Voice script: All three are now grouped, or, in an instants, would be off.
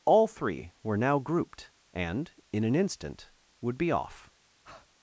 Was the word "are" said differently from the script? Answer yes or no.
yes